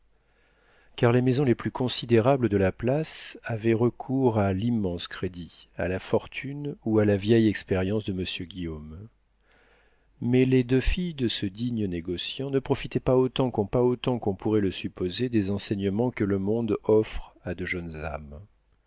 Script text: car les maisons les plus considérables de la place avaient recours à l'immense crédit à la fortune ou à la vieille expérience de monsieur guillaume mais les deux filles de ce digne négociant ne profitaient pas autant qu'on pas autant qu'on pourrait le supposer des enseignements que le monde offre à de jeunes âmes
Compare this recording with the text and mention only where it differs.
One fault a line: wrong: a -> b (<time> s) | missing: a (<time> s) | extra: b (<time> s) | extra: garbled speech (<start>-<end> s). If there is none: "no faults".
no faults